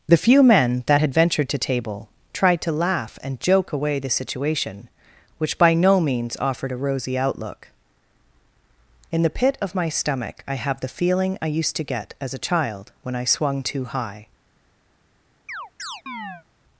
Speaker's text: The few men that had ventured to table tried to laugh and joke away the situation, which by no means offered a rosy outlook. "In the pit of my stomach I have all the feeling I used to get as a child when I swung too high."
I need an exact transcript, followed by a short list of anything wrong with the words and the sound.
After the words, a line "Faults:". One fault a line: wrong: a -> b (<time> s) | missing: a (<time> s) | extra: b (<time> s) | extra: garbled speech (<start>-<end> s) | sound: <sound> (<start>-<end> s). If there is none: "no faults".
The few men that had ventured to table tried to laugh and joke away the situation, which by no means offered a rosy outlook. "In the pit of my stomach I have the feeling I used to get as a child when I swung too high."
Faults:
missing: all (10.8 s)
sound: chirp (15.5-16.4 s)